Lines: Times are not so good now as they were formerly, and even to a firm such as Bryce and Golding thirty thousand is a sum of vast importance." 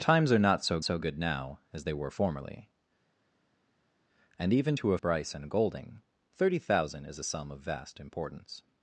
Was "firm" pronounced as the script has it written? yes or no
no